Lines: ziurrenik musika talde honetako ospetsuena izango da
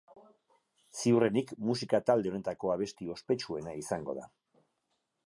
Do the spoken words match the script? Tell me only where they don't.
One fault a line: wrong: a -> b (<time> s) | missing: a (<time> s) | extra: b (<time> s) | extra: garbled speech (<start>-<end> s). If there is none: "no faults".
extra: abesti (2.8 s)